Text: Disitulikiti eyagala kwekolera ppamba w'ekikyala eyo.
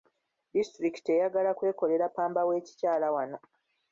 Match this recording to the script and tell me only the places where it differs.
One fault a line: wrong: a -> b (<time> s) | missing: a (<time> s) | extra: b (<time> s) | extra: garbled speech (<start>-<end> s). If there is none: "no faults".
wrong: eyo -> wano (3.1 s)